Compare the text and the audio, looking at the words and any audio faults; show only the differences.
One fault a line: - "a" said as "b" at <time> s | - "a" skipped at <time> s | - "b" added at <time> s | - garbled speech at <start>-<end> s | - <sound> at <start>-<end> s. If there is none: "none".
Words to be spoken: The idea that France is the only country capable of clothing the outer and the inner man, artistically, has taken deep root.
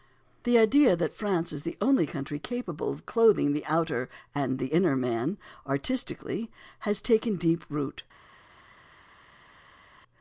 none